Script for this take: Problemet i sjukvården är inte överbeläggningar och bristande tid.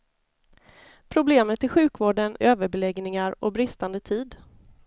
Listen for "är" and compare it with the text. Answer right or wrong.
wrong